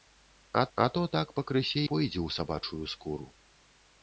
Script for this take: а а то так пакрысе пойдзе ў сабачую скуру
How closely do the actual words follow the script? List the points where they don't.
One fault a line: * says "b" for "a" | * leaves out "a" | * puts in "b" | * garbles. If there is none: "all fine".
all fine